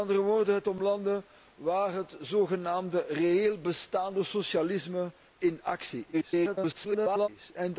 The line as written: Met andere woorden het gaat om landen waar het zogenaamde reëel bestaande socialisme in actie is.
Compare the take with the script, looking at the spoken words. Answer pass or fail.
fail